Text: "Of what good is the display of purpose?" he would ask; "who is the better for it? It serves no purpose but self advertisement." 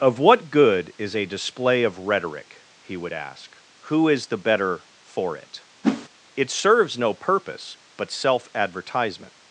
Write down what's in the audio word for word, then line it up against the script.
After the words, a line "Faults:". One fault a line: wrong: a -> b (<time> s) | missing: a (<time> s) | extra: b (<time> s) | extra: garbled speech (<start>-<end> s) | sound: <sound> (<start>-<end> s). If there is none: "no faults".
"Of what good is a display of rhetoric?" he would ask; "who is the better for it? It serves no purpose but self advertisement."
Faults:
wrong: the -> a (1.1 s)
wrong: purpose -> rhetoric (2.0 s)
sound: whoosh (5.8-6.1 s)